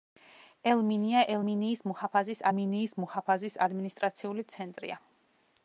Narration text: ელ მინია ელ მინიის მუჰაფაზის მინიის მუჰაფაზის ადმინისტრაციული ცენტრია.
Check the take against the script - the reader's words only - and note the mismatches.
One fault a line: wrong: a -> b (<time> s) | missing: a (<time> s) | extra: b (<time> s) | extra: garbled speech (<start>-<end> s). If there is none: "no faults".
no faults